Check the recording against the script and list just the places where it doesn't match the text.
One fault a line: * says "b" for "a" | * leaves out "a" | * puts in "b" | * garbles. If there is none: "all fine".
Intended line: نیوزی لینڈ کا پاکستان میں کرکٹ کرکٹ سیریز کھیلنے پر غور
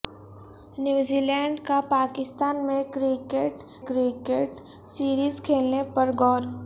all fine